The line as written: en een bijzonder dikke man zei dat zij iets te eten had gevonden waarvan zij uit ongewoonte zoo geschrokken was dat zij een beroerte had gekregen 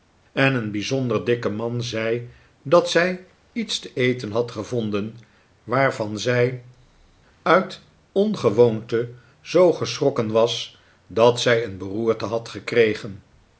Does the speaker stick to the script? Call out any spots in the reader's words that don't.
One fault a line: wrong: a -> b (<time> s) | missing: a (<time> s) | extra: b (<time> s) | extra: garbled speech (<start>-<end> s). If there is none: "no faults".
no faults